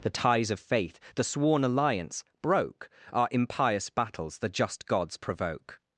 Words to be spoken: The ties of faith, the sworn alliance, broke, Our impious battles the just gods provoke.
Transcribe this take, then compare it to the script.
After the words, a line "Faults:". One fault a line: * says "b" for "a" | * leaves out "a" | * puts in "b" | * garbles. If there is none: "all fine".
The ties of faith, the sworn alliance, broke, Our impious battles the just gods provoke.
Faults:
all fine